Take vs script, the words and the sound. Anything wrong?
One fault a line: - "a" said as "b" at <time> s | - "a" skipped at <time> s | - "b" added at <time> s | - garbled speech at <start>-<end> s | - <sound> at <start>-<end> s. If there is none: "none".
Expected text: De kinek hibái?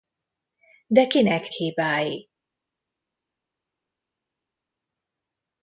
none